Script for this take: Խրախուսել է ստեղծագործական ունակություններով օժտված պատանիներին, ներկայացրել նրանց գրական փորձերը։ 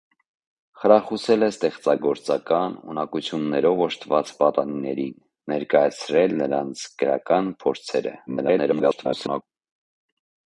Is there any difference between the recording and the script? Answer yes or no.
yes